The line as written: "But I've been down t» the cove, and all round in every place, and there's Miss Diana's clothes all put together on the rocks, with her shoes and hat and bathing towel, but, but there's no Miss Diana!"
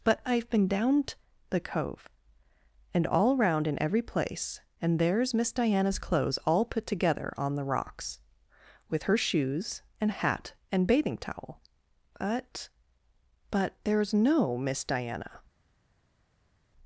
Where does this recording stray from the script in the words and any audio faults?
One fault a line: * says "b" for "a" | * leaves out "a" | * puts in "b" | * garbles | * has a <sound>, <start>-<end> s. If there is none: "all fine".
all fine